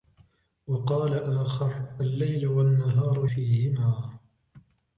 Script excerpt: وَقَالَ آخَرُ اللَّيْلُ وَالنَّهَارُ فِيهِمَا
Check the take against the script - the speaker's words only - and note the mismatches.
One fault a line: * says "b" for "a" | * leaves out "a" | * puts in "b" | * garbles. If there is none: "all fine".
all fine